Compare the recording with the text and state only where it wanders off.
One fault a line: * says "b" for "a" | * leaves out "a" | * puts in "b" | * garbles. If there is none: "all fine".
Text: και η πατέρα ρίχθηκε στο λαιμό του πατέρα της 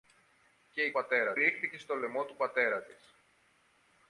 all fine